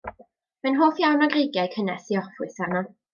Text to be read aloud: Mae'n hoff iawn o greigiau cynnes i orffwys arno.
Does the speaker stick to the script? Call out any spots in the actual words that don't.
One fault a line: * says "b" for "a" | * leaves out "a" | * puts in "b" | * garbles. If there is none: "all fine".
all fine